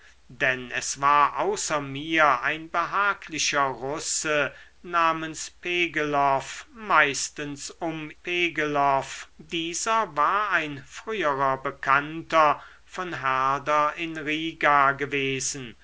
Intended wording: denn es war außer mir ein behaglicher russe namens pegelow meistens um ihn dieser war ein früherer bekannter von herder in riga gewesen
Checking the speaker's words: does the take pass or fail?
fail